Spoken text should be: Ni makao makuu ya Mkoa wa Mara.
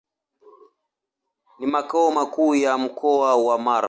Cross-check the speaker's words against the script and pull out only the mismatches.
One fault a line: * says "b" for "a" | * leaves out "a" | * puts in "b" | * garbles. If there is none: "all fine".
all fine